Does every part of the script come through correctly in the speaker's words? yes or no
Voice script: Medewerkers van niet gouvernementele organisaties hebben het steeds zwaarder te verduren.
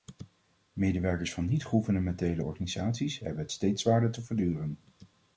yes